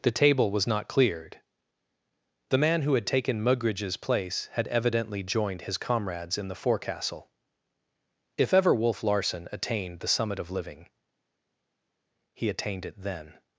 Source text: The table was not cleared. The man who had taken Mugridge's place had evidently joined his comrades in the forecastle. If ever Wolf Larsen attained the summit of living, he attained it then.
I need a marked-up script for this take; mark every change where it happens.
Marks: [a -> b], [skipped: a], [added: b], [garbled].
The table was not cleared. The man who had taken Mugridge's place had evidently joined his comrades in the forecastle. If ever Wolf Larsen attained the summit of living, he attained it then.